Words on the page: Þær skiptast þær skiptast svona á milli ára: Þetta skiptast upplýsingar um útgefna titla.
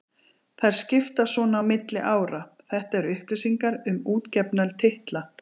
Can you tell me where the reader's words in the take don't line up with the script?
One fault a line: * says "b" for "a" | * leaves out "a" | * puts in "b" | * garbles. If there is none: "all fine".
* leaves out "þær skiptast"
* says "eru" for "skiptast"